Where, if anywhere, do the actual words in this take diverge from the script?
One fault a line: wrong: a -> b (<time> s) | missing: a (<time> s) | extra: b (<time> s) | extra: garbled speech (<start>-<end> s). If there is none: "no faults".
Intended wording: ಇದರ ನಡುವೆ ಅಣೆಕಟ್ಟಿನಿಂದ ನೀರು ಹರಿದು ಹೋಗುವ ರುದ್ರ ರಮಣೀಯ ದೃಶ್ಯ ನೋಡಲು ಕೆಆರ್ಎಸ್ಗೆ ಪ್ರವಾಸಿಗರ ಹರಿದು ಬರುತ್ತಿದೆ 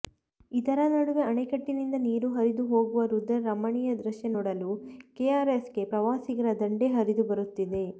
extra: ದಂಡೇ (6.6 s)